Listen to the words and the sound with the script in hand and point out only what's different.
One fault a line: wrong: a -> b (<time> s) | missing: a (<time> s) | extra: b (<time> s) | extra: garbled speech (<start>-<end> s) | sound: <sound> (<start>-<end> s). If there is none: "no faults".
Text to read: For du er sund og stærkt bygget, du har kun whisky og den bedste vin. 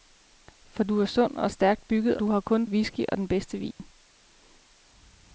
sound: dropout (3.7-3.8 s)